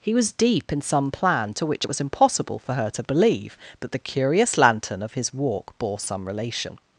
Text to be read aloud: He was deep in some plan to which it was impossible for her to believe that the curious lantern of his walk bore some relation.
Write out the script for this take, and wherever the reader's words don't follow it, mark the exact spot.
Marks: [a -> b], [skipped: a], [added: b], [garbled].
He was deep in some plan to which it was impossible for her to believe that the curious lantern of his walk bore some relation.